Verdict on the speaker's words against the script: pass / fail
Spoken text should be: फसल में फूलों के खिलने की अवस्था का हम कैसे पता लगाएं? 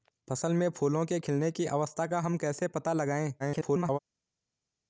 fail